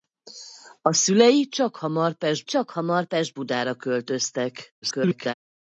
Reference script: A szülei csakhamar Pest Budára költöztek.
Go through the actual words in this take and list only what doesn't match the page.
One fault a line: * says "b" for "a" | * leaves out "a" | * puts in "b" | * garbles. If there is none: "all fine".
* puts in "csakhamar Pest"
* garbles